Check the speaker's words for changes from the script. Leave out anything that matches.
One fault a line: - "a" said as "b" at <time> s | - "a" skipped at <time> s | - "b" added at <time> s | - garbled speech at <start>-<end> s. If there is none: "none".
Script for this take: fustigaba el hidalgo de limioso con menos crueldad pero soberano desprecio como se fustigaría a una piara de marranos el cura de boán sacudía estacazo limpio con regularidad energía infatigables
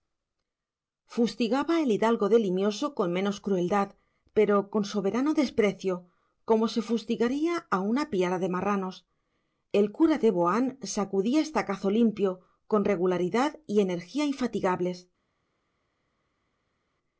- "con" added at 4.7 s
- "y" added at 13.7 s